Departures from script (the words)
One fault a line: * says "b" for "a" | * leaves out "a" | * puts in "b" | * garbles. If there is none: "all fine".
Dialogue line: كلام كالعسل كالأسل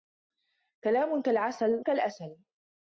all fine